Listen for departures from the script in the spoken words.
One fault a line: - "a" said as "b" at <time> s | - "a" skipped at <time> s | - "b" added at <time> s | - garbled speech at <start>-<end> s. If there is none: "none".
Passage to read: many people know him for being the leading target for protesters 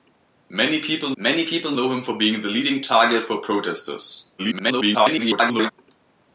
- "many people" added at 1.2 s
- garbled speech at 4.4-5.7 s